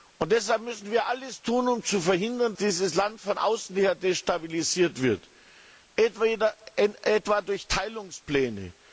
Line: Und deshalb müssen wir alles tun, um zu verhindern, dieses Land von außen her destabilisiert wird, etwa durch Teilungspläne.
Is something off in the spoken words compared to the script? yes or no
no